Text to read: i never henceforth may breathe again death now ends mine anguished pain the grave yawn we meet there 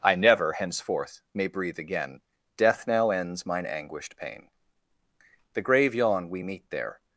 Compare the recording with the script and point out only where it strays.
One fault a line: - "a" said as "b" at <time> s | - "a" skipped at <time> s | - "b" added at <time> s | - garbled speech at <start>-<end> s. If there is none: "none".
none